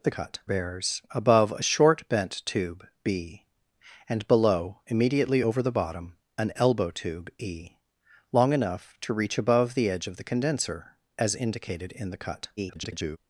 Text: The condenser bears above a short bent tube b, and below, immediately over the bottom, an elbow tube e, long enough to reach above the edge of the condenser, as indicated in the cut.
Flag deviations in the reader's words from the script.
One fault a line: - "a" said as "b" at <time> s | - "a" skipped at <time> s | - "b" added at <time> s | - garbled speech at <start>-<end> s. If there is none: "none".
- "condenser" said as "cut" at 0.1 s
- garbled speech at 12.6-13.2 s